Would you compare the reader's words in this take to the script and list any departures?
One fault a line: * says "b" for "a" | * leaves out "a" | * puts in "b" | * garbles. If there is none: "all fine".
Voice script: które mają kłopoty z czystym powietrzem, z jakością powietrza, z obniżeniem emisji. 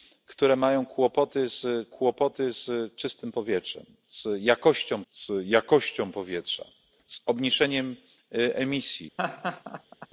* puts in "kłopoty z"
* puts in "z jakością"